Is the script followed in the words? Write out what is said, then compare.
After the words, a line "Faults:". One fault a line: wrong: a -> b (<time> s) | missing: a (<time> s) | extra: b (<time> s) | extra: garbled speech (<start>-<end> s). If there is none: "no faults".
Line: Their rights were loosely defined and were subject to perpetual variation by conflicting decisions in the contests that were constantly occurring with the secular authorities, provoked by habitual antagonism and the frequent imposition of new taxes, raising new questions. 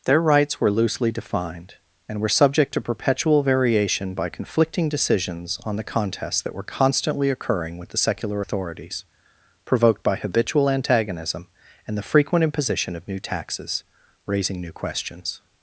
Their rights were loosely defined and were subject to perpetual variation by conflicting decisions on the contests that were constantly occurring with the secular authorities, provoked by habitual antagonism and the frequent imposition of new taxes, raising new questions.
Faults:
wrong: in -> on (5.6 s)